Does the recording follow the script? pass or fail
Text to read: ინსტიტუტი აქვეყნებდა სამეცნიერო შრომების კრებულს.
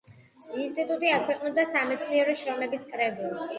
pass